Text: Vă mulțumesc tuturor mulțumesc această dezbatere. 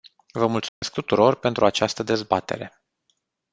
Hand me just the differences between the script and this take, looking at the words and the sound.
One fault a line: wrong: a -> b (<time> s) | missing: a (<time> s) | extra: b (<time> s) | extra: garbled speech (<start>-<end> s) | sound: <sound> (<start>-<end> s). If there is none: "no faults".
sound: dropout (0.7-0.8 s)
wrong: mulțumesc -> pentru (1.4 s)